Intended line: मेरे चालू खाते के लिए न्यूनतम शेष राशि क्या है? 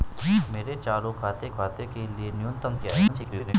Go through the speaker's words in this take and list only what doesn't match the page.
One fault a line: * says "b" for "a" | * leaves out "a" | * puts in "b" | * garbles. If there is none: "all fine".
* puts in "खाते"
* leaves out "शेष राशि"
* garbles